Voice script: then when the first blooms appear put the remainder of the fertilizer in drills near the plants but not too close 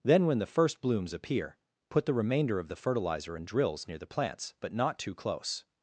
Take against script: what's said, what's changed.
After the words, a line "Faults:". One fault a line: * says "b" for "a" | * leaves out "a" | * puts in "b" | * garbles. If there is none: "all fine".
then when the first blooms appear put the remainder of the fertilizer in drills near the plants but not too close
Faults:
all fine